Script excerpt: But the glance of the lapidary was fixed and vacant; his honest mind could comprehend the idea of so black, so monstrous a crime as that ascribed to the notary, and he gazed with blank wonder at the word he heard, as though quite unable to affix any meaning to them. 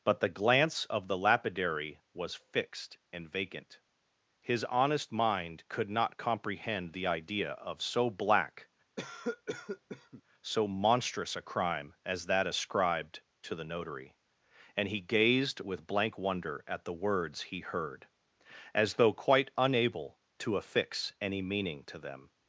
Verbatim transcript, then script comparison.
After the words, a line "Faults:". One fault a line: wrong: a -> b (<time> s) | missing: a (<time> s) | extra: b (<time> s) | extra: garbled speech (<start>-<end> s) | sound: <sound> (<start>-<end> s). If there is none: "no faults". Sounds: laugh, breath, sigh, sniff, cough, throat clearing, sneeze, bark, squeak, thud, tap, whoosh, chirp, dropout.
But the glance of the lapidary was fixed and vacant; his honest mind could not comprehend the idea of so black, so monstrous a crime as that ascribed to the notary, and he gazed with blank wonder at the words he heard, as though quite unable to affix any meaning to them.
Faults:
extra: not (5.9 s)
sound: cough (9.0-10.2 s)
wrong: word -> words (16.9 s)